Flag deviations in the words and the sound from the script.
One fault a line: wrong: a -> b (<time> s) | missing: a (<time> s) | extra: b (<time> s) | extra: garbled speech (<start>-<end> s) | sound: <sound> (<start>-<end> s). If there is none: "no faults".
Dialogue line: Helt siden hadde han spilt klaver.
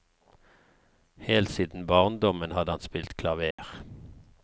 extra: barndommen (1.9 s)
sound: dropout (3.5-3.6 s)